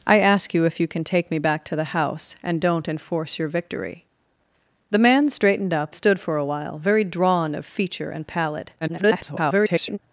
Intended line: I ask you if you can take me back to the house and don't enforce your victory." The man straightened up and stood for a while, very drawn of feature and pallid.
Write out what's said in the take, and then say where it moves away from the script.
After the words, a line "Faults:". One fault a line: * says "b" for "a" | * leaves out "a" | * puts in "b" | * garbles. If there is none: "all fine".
I ask you if you can take me back to the house and don't enforce your victory." The man straightened up stood for a while, very drawn of feature and pallid. [garbled]
Faults:
* leaves out "and"
* garbles